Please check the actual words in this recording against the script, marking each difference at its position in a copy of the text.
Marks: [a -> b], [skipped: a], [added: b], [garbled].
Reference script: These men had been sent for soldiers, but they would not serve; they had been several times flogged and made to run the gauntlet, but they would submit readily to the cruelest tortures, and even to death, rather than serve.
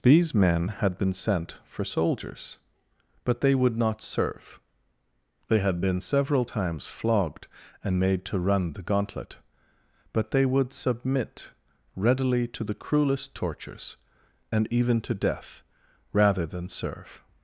These men had been sent for soldiers, but they would not serve; they had been several times flogged and made to run the gauntlet, but they would submit readily to the cruelest tortures, and even to death, rather than serve.